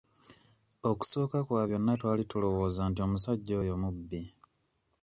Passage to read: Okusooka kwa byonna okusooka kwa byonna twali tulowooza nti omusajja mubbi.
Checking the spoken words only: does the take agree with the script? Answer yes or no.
no